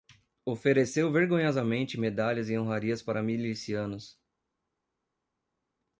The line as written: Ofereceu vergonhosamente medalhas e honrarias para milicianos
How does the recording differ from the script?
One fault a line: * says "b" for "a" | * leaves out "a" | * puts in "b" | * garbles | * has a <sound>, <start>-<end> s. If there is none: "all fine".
all fine